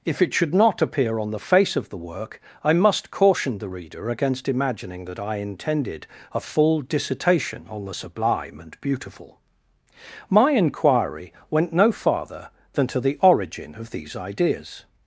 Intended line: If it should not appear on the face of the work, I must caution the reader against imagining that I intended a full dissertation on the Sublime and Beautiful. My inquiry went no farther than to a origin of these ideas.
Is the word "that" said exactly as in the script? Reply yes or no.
yes